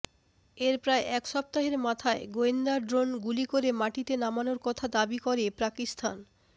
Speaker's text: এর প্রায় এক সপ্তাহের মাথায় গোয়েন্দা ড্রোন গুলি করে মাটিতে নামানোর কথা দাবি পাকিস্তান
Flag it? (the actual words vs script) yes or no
yes